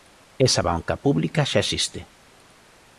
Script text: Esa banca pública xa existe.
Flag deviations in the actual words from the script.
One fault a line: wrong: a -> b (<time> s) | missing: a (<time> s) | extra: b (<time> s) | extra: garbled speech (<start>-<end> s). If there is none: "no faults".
no faults